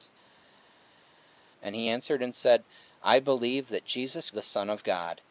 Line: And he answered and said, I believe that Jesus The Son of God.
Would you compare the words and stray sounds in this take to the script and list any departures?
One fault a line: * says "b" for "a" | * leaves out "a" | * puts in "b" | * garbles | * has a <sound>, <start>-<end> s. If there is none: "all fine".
all fine